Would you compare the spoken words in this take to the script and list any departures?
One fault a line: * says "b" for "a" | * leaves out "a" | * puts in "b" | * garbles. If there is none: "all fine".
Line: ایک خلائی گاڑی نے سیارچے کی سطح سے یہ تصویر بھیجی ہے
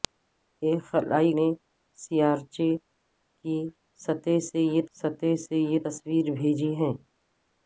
* leaves out "گاڑی"
* puts in "سطح سے یہ"